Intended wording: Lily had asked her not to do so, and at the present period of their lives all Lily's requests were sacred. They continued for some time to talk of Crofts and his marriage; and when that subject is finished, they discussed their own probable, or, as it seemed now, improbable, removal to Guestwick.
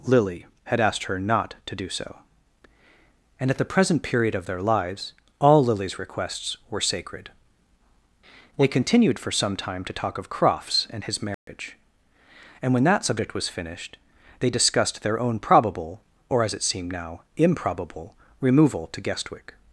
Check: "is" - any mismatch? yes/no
yes